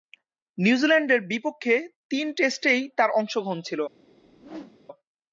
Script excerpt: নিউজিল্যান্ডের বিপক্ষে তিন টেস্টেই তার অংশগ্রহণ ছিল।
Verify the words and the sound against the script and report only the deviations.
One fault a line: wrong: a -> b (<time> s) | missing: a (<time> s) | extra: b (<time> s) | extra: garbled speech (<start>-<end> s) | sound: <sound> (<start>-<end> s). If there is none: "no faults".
sound: whoosh (4.0-4.8 s)